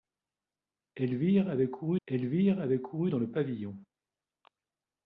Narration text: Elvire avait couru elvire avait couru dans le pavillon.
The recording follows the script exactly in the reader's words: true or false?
true